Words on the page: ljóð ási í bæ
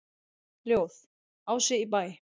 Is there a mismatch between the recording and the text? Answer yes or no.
no